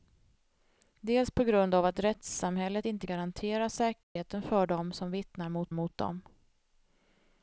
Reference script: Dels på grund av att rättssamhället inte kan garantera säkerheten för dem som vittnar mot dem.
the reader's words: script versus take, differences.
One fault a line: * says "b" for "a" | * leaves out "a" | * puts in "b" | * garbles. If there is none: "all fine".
* leaves out "kan"
* puts in "mot"